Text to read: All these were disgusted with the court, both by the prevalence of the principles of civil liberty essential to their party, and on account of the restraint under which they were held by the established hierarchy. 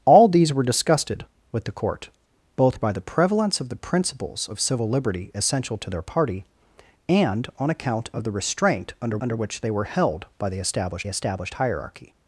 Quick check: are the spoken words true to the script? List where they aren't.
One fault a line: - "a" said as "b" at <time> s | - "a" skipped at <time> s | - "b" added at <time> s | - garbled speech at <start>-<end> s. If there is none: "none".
- "under" added at 9.2 s
- "established" added at 11.1 s